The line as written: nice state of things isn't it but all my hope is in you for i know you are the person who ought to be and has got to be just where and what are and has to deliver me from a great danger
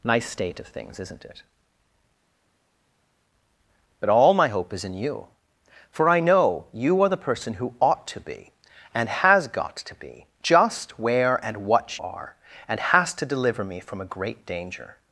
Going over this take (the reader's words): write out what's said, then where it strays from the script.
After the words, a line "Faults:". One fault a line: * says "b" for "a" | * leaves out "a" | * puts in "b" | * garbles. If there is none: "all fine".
nice state of things isn't it but all my hope is in you for i know you are the person who ought to be and has got to be just where and what are and has to deliver me from a great danger
Faults:
all fine